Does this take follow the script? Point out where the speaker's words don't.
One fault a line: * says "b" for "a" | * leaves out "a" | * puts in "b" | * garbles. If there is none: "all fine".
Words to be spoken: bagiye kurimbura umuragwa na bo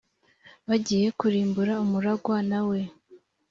* says "we" for "bo"